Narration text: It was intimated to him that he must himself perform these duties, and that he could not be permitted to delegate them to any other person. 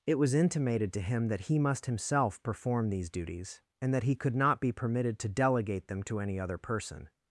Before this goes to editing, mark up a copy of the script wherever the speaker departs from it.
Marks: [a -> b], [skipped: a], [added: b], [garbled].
It was intimated to him that he must himself perform these duties, and that he could not be permitted to delegate them to any other person.